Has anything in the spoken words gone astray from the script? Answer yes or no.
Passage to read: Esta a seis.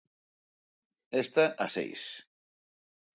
no